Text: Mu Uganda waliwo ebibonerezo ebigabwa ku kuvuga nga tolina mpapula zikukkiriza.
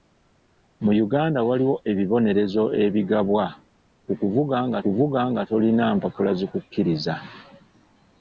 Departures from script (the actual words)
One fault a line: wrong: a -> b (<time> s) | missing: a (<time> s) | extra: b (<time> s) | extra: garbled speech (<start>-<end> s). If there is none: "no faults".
extra: kuvuga nga (4.8 s)